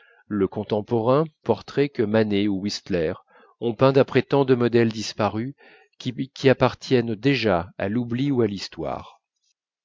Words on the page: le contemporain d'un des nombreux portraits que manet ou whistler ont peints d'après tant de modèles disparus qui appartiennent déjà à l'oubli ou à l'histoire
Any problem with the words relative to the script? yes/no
yes